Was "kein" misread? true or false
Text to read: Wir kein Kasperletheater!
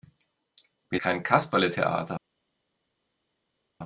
false